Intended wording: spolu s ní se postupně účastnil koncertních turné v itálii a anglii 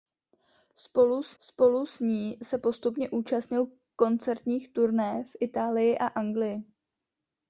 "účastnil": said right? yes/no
yes